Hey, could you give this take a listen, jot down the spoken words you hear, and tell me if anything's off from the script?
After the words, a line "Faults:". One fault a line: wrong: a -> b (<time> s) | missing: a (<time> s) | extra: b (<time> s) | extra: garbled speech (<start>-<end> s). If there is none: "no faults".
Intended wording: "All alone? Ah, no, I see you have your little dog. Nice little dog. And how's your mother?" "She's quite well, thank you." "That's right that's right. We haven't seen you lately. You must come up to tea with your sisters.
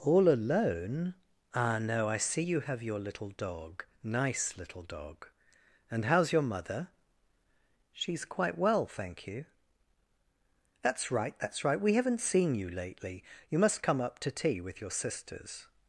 "All alone? Ah, no, I see you have your little dog. Nice little dog. And how's your mother?" "She's quite well, thank you." "That's right that's right. We haven't seen you lately. You must come up to tea with your sisters.
Faults:
no faults